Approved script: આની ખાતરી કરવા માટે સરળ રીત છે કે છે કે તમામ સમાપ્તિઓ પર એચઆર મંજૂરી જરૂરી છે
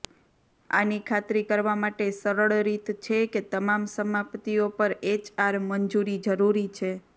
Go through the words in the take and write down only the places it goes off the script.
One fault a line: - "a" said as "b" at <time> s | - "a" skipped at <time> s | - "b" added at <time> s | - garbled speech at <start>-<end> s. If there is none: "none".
- "છે કે" skipped at 3.4 s